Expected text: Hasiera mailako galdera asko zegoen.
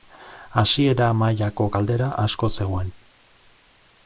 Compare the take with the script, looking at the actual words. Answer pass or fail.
pass